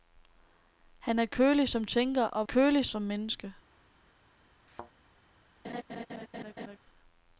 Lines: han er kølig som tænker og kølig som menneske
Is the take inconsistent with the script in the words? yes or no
no